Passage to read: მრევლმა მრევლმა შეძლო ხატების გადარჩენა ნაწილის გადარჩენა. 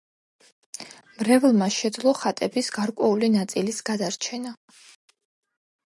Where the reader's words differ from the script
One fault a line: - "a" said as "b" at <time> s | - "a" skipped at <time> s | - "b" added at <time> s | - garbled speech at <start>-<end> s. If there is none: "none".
- "მრევლმა" skipped at 1.7 s
- "გადარჩენა" said as "გარკვეული" at 2.8 s